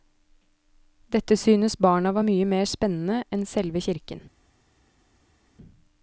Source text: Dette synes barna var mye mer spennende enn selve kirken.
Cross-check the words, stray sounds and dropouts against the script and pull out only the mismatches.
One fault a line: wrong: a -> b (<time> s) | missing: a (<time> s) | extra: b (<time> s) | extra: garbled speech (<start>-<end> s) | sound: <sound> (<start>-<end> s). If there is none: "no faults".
no faults